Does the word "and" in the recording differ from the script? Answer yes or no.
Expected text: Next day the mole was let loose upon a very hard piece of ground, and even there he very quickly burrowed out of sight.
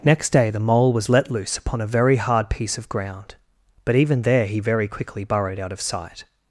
yes